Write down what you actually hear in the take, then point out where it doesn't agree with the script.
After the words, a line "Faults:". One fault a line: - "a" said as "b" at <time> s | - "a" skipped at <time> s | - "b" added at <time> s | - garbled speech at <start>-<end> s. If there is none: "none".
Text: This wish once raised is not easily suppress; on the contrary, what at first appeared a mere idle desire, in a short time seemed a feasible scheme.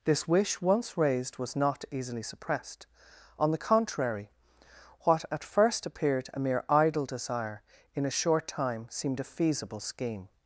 This wish once raised was not easily suppressed; on the contrary, what at first appeared a mere idle desire, in a short time seemed a feasible scheme.
Faults:
- "is" said as "was" at 1.4 s
- "suppress" said as "suppressed" at 2.2 s